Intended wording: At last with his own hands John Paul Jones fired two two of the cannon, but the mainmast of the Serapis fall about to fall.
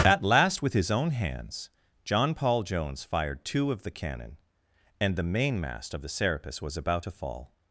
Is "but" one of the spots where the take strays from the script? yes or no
yes